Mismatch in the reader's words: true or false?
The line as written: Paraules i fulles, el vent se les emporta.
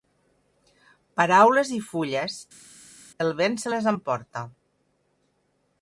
false